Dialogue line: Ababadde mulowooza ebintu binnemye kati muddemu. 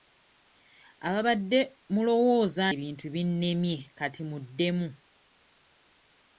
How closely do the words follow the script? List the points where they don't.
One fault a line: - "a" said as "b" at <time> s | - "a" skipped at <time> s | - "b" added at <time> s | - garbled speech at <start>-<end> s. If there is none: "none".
none